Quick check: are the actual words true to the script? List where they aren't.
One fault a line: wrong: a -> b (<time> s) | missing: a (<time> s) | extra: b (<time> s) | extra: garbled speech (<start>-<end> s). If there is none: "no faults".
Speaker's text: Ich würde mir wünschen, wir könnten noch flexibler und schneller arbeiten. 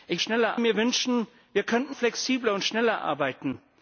wrong: würde -> schneller (0.2 s)
missing: noch (1.9 s)